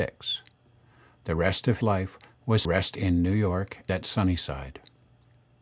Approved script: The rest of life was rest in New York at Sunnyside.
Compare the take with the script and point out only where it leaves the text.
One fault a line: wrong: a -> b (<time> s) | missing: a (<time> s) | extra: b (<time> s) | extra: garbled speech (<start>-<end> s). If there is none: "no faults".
no faults